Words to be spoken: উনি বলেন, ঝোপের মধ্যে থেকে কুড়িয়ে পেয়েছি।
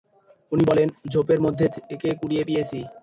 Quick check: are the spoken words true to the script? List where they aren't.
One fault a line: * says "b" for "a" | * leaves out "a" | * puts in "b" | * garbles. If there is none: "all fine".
all fine